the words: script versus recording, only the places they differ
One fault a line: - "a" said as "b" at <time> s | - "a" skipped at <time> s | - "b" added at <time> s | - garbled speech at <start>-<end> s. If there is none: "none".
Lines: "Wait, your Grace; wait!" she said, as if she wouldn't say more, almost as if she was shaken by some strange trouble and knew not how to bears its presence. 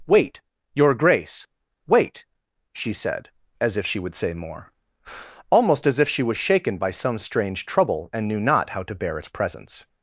- "wouldn't" said as "would" at 4.0 s
- "bears" said as "bear" at 8.9 s